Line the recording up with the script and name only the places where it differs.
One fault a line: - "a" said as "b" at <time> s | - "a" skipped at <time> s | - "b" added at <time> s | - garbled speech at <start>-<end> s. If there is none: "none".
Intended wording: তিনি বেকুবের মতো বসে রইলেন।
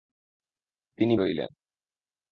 - "বেকুবের মতো বসে" skipped at 1.1 s